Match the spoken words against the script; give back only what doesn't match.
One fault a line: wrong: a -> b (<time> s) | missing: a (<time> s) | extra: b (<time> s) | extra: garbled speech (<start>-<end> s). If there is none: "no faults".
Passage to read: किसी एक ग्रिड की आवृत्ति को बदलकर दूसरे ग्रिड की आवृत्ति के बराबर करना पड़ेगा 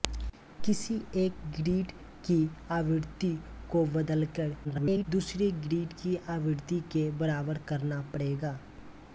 extra: garbled speech (4.6-5.1 s)